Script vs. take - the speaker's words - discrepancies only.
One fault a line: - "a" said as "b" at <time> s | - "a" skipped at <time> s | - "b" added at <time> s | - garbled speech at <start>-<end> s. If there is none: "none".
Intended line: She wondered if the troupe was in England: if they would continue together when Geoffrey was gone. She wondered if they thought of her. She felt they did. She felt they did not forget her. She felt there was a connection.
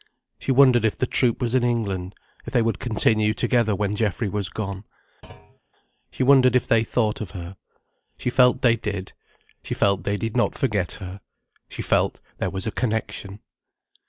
none